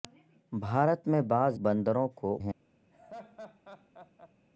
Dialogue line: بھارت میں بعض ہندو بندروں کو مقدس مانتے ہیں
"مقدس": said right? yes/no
no